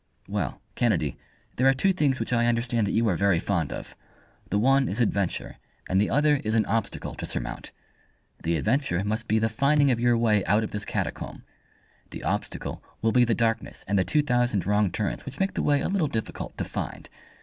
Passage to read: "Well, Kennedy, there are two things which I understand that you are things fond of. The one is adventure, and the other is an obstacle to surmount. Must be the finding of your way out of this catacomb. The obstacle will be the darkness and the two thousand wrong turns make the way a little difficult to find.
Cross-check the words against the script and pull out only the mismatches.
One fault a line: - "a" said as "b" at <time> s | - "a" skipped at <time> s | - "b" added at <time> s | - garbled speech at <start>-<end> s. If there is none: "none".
- "things" said as "very" at 3.1 s
- "The adventure" added at 8.4 s
- "which" added at 15.2 s